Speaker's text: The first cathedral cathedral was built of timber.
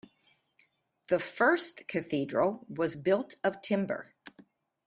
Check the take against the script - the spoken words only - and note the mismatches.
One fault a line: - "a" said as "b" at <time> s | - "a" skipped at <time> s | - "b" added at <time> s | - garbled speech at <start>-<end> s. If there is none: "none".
- "cathedral" skipped at 2.7 s